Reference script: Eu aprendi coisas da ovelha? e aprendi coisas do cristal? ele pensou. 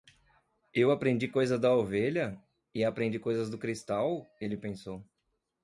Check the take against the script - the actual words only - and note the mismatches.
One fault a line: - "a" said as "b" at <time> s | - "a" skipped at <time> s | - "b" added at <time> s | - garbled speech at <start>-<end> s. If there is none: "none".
none